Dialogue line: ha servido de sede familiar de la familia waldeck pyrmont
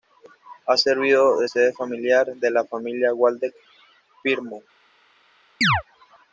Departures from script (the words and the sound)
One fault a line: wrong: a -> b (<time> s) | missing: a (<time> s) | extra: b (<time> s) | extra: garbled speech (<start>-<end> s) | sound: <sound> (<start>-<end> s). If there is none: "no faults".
sound: chirp (5.6-5.8 s)